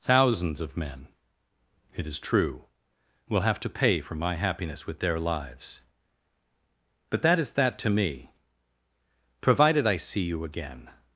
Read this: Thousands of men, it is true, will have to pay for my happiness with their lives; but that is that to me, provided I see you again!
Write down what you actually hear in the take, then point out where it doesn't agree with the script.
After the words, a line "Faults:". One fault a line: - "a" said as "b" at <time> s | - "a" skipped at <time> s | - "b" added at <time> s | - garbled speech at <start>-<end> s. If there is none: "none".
Thousands of men, it is true, will have to pay for my happiness with their lives; but that is that to me, provided I see you again!
Faults:
none